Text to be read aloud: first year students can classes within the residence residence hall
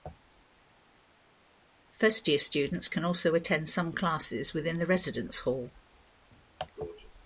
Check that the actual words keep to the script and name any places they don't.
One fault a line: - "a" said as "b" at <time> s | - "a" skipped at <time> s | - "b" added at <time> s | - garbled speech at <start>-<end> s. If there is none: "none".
- "also attend some" added at 3.1 s
- "residence" skipped at 5.4 s